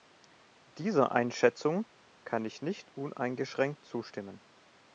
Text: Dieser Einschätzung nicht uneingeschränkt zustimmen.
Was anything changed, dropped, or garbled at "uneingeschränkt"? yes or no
no